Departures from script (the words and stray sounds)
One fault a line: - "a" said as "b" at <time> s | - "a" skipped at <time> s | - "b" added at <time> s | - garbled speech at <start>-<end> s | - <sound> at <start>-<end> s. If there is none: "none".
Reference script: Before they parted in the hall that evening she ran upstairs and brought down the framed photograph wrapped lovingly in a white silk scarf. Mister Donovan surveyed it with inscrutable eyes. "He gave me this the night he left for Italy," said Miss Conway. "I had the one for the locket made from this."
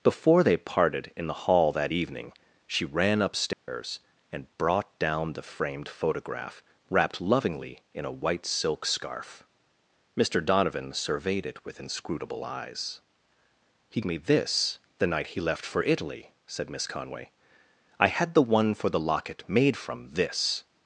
- dropout at 3.5-3.7 s
- "gave" skipped at 14.0 s